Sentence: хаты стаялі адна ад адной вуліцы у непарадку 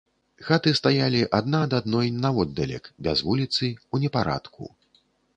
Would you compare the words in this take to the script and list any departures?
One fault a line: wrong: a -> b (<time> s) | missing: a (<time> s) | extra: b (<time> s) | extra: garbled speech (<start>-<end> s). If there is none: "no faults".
extra: наводдалек без (2.2 s)